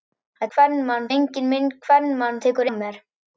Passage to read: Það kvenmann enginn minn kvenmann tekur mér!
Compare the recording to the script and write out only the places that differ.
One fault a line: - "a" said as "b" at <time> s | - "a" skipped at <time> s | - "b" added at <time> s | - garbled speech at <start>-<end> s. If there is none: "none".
none